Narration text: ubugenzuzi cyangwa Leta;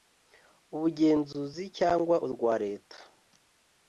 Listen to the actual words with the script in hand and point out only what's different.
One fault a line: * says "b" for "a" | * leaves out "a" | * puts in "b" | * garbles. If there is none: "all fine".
* puts in "urwa"